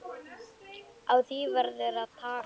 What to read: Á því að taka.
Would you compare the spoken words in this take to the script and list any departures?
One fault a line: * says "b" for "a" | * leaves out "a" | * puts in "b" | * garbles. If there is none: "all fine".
* puts in "verður"